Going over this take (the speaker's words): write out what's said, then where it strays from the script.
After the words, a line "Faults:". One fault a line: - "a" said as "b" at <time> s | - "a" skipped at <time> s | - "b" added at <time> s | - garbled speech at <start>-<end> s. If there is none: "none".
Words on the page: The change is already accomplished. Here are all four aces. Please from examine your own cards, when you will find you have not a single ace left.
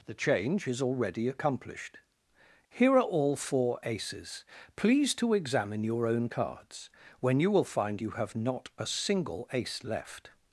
The change is already accomplished. Here are all four aces. Please to examine your own cards, when you will find you have not a single ace left.
Faults:
- "from" said as "to" at 5.2 s